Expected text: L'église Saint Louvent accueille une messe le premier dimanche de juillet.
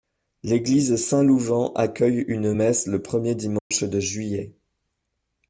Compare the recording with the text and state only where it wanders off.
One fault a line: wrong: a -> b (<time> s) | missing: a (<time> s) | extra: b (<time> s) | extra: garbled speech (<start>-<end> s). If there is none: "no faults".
no faults